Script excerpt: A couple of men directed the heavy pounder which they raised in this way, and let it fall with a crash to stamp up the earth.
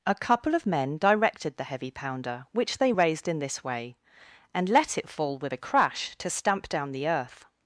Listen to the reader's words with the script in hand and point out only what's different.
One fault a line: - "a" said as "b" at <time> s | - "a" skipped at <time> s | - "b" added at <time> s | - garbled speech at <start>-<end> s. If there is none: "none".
- "up" said as "down" at 6.7 s